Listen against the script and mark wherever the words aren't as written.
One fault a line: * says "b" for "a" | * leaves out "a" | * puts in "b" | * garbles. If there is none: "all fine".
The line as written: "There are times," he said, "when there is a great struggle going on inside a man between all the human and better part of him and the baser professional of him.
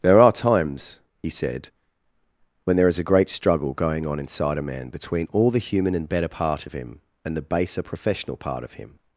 * puts in "part"